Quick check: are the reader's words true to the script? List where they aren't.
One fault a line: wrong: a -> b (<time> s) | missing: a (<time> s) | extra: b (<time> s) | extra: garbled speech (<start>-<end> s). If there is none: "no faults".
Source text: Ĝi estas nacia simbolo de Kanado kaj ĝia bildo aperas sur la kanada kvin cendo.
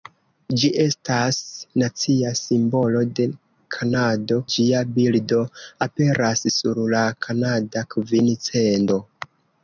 missing: kaj (4.4 s)